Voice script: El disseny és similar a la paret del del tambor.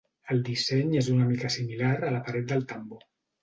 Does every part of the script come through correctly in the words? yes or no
no